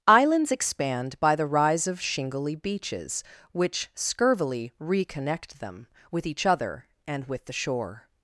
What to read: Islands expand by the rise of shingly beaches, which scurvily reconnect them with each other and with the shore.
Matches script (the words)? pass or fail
pass